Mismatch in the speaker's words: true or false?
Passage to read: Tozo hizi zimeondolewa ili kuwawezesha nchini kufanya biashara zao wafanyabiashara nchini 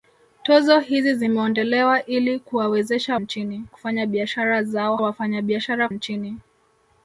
false